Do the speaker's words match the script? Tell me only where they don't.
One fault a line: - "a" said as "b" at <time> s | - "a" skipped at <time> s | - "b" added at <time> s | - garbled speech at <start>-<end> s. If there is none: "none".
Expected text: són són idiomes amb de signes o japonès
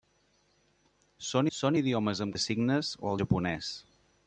none